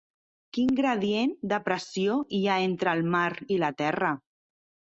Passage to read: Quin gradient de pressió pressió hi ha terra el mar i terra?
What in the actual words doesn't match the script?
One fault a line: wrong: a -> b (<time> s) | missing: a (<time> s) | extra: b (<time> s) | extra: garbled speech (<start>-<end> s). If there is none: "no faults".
missing: pressió (2.2 s)
wrong: terra -> entre (2.7 s)
extra: la (3.6 s)